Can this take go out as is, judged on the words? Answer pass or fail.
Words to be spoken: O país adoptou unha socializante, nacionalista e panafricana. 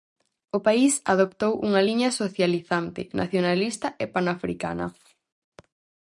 fail